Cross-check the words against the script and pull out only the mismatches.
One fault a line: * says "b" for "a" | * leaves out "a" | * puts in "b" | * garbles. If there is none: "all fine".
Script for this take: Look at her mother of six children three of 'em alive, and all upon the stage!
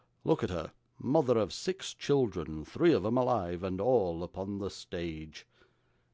all fine